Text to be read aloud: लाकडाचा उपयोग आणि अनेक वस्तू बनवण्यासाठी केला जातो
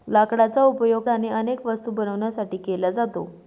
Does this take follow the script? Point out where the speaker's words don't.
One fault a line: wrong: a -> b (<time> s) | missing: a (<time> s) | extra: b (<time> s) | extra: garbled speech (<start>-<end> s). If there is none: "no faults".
no faults